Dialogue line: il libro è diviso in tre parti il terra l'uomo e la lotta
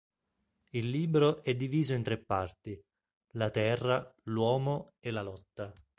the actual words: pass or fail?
fail